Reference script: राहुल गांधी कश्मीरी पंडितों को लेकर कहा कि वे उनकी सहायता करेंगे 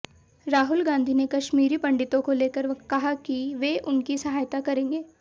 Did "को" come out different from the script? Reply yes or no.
no